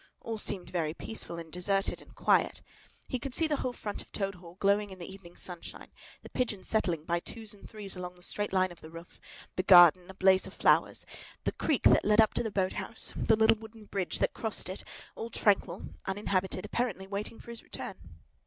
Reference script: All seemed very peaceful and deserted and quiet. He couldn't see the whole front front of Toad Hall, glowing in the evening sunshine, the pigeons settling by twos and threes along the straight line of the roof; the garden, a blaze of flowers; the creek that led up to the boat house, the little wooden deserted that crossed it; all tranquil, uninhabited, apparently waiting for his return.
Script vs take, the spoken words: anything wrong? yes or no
yes